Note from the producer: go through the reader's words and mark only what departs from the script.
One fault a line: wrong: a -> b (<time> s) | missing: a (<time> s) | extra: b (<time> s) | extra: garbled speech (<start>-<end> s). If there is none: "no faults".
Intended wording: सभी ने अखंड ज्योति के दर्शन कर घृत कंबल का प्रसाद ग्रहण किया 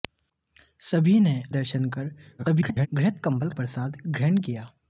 missing: अखंड ज्योति के (1.3 s)
extra: garbled speech (2.4-2.9 s)
missing: का (3.5 s)